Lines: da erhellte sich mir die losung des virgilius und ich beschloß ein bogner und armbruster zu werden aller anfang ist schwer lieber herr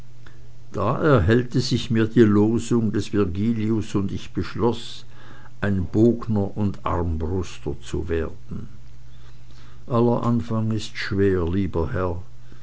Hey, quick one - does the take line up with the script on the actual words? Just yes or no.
yes